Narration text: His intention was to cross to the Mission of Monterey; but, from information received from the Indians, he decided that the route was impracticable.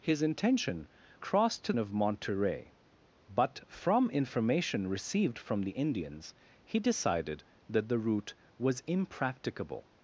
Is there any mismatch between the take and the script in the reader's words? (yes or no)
yes